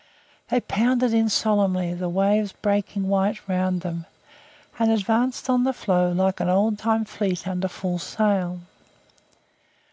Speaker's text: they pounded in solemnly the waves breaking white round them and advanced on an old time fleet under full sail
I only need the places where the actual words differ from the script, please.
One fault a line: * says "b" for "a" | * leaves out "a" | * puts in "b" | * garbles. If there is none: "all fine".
* puts in "the floe like"